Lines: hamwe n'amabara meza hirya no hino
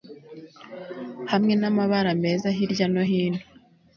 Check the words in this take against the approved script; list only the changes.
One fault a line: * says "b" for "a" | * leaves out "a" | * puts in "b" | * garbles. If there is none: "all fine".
all fine